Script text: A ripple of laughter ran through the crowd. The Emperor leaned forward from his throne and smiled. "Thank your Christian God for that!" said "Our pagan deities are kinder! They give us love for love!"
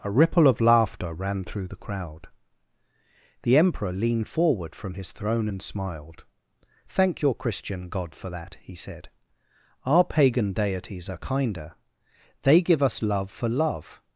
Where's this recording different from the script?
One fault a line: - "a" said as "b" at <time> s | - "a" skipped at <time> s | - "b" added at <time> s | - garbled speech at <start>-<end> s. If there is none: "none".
- "he" added at 8.6 s